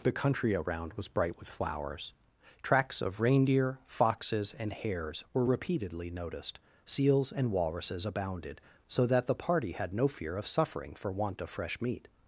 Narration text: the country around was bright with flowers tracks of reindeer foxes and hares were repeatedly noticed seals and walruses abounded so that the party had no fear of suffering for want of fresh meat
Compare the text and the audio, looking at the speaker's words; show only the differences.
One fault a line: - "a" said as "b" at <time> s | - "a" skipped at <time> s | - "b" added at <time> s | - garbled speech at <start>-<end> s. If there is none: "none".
none